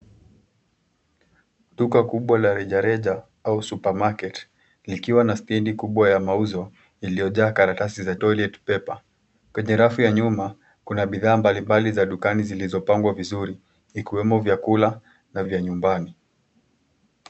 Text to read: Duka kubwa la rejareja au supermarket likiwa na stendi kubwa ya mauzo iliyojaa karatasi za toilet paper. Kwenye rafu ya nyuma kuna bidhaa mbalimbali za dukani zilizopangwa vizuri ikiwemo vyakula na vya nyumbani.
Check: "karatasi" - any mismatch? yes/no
no